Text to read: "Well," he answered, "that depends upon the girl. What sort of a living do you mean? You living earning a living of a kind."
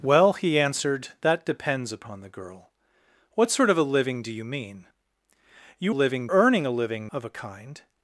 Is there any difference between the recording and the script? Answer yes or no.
no